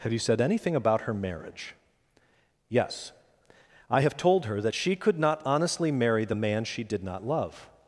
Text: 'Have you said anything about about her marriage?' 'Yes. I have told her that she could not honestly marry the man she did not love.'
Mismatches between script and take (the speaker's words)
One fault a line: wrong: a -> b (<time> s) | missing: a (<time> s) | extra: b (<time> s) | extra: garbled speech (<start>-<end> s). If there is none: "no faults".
missing: about (1.0 s)